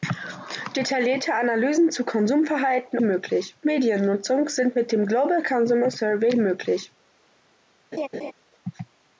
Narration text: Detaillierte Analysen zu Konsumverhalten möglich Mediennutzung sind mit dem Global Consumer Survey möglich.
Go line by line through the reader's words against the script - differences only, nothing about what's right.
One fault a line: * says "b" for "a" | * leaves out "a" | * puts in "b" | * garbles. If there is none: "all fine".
all fine